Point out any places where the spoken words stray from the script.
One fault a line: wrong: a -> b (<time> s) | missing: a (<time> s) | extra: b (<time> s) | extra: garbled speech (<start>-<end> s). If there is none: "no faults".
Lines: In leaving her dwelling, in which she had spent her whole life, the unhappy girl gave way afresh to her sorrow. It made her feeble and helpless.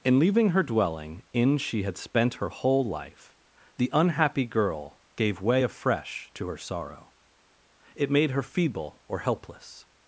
missing: which (1.6 s)
wrong: and -> or (9.1 s)